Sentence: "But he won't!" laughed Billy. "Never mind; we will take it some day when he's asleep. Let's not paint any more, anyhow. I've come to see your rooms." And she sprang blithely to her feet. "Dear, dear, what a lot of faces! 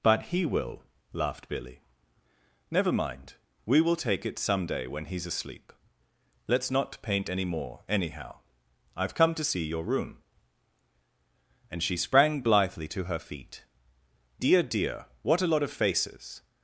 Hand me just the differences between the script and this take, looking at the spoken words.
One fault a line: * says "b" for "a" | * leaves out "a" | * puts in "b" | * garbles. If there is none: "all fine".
* says "will" for "won't"
* says "room" for "rooms"